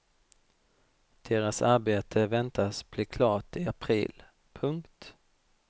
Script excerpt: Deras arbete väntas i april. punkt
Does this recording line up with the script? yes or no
no